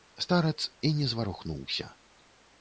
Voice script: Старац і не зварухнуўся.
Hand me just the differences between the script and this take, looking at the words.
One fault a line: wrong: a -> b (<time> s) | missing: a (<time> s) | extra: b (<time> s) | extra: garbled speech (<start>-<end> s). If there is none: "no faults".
no faults